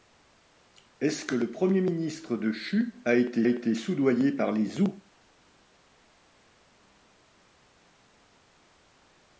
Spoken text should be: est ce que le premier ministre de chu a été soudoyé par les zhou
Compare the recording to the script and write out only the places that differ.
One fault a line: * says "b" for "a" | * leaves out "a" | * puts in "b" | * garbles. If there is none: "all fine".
* puts in "été"